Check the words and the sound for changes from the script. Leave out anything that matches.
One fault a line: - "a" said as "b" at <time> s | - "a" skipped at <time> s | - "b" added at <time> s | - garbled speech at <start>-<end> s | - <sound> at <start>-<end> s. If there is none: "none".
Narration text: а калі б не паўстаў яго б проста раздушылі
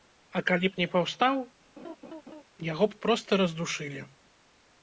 - laugh at 1.8-2.4 s